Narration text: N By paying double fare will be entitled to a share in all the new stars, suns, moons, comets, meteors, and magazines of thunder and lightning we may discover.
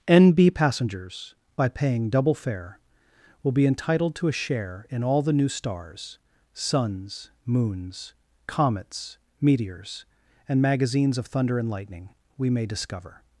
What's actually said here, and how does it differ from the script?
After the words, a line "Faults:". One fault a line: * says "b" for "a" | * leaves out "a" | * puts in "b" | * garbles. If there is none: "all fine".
N B Passengers by paying double fare will be entitled to a share in all the new stars, suns, moons, comets, meteors, and magazines of thunder and lightning we may discover.
Faults:
* puts in "B Passengers"